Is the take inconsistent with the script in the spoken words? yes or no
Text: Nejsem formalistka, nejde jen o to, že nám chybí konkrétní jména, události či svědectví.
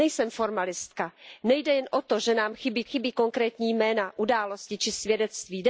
yes